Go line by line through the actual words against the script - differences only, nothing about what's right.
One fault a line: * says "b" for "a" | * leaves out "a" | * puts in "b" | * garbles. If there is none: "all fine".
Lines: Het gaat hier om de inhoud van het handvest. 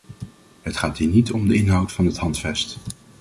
* puts in "niet"